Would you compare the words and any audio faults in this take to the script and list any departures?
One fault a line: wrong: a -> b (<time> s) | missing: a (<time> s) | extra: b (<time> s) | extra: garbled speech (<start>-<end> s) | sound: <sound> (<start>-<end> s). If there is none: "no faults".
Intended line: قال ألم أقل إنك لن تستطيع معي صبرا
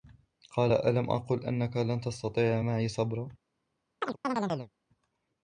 sound: chirp (4.0-4.7 s)